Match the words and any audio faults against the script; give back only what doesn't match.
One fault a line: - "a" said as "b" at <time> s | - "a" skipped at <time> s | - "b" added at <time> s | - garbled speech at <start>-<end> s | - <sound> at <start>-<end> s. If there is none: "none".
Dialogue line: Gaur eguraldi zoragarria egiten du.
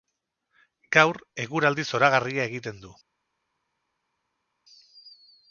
none